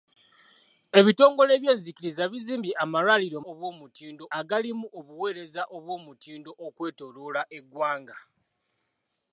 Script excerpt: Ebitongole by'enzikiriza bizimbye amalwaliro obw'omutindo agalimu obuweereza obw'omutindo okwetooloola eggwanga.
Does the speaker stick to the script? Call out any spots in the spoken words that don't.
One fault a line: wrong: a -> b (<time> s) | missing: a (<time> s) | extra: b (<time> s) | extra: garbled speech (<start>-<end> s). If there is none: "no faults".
no faults